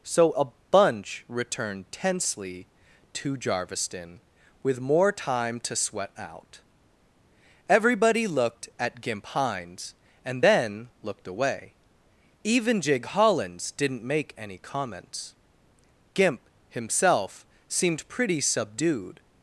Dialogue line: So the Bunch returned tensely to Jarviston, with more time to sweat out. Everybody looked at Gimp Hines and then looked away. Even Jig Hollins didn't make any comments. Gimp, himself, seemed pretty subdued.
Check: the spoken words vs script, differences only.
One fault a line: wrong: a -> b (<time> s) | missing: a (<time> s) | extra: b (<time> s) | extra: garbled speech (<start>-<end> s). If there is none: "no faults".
wrong: the -> a (0.3 s)